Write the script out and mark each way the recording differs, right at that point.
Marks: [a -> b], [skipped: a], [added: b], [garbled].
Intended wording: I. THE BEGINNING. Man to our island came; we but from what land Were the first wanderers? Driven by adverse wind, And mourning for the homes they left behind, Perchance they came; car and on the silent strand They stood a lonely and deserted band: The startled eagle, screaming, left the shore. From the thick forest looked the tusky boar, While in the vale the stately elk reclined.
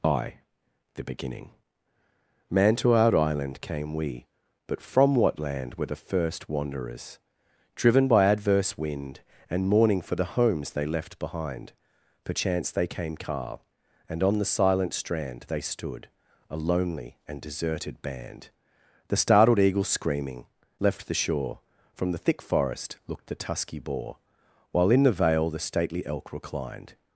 I. THE BEGINNING. Man to our island came; we but from what land Were the first wanderers? Driven by adverse wind, And mourning for the homes they left behind, Perchance they came; car and on the silent strand They stood a lonely and deserted band: The startled eagle, screaming, left the shore. From the thick forest looked the tusky boar, While in the vale the stately elk reclined.